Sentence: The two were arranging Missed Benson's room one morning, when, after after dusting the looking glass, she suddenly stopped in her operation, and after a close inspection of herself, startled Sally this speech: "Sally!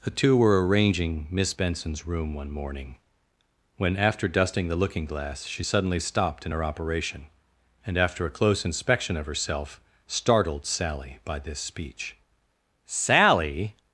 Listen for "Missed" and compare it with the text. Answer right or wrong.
wrong